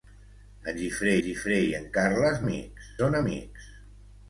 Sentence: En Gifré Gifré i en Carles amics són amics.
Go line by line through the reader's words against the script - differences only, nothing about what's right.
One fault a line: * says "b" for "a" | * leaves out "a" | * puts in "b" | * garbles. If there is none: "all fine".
all fine